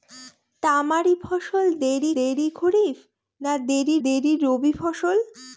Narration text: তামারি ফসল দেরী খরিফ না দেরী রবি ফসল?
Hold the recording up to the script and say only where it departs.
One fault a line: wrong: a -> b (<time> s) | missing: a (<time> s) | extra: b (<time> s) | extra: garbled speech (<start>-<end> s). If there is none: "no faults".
extra: দেরী (2.2 s)
extra: দেরী (4.0 s)